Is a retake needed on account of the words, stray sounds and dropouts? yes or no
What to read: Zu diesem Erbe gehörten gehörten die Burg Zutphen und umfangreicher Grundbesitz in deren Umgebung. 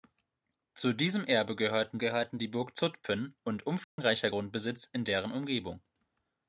yes